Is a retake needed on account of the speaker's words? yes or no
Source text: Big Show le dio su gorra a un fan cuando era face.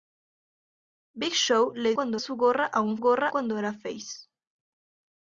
yes